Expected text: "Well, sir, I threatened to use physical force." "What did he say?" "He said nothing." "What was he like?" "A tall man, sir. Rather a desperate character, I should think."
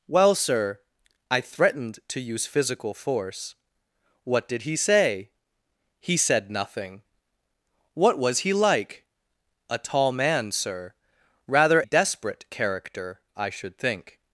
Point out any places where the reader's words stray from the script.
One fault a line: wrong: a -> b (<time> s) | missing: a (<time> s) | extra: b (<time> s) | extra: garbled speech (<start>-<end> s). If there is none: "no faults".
missing: a (11.8 s)